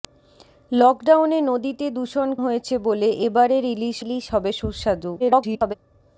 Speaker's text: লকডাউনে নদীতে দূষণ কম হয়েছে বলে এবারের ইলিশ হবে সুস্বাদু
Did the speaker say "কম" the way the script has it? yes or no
no